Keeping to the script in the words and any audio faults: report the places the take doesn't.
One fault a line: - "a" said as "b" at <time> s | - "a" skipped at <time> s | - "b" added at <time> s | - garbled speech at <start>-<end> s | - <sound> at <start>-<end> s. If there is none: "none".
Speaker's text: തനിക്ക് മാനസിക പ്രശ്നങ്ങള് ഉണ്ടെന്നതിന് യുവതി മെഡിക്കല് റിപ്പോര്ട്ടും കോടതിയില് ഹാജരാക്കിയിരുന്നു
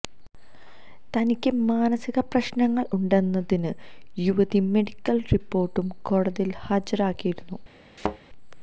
- thud at 8.0-8.2 s